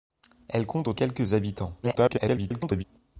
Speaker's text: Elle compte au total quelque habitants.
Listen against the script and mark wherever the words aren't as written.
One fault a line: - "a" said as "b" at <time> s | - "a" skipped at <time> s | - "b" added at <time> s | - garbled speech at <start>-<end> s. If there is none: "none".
- "total" skipped at 0.9 s
- garbled speech at 1.8-2.8 s